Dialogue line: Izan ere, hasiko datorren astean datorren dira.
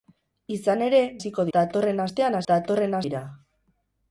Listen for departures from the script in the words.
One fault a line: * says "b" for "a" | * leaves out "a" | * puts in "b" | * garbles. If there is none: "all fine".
all fine